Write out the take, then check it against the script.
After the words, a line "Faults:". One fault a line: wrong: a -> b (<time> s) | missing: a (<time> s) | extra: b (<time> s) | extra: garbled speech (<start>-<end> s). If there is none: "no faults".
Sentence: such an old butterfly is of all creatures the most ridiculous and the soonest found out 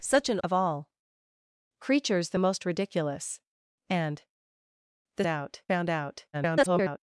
such an of all creatures the most ridiculous and the out found out [garbled]
Faults:
missing: old butterfly is (0.4 s)
wrong: soonest -> out (5.3 s)
extra: garbled speech (6.3-7.0 s)